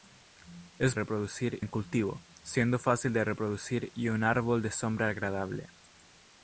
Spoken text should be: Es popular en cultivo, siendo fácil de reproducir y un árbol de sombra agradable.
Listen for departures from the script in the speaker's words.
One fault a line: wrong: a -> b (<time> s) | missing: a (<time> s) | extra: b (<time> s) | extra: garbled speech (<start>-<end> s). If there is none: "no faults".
wrong: popular -> reproducir (0.9 s)